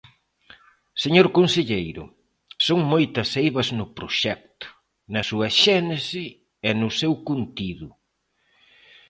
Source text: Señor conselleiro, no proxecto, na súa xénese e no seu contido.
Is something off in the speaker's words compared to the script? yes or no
yes